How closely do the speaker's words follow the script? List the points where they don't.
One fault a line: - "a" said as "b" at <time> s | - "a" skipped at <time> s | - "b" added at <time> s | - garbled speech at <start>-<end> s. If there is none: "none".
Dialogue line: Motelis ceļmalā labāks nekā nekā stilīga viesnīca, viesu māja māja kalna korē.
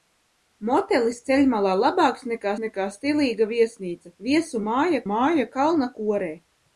none